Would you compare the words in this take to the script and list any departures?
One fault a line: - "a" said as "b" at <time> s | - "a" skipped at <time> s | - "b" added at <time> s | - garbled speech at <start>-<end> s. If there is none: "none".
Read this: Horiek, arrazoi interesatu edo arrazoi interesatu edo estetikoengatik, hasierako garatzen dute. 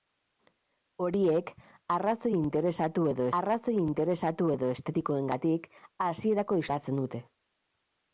none